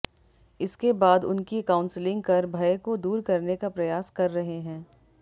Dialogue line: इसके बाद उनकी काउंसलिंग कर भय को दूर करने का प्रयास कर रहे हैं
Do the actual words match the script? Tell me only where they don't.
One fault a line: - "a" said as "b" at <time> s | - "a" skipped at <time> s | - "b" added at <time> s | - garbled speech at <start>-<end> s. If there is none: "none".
none